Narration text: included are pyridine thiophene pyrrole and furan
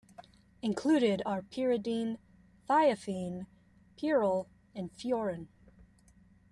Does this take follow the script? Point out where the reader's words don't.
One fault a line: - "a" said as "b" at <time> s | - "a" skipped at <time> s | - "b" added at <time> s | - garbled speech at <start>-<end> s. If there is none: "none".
none